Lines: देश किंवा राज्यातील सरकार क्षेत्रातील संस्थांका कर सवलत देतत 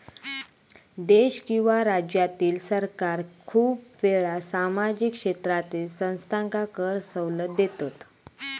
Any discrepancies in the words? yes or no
yes